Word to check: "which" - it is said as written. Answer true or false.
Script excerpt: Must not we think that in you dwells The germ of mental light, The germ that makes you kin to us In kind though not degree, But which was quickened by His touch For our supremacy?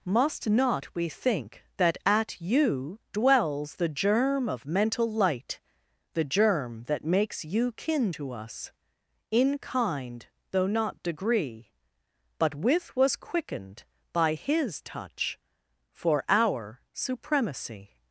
false